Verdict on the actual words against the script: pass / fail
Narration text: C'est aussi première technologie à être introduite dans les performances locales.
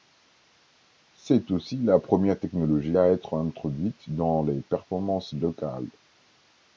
fail